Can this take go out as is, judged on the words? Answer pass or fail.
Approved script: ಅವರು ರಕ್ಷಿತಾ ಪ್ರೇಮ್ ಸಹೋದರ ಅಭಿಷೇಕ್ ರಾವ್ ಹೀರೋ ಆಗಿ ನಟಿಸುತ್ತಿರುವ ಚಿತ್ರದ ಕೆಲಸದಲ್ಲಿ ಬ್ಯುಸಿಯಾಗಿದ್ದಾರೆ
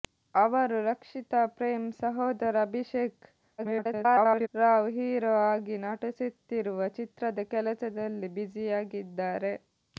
fail